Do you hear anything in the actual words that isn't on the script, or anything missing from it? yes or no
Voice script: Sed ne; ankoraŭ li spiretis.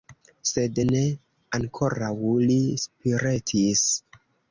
no